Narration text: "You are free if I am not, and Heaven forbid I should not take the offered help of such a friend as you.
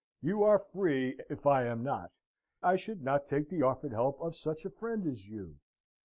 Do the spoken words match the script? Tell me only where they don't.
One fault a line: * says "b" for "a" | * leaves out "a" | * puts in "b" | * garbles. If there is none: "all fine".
* leaves out "and Heaven forbid"